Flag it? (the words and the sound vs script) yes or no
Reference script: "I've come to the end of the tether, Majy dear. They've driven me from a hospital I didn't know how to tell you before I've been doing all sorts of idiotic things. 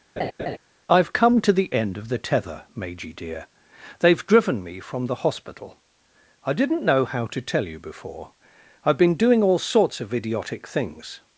yes